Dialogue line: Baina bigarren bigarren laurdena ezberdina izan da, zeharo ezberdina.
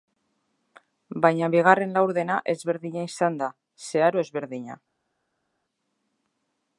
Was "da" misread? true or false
false